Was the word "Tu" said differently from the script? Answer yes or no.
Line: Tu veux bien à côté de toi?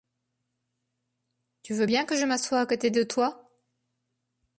no